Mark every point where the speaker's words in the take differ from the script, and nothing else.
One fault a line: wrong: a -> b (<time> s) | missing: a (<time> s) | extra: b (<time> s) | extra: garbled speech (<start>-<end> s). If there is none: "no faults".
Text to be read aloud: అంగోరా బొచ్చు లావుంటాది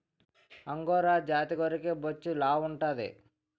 extra: జాతి గొర్రెకి (1.3 s)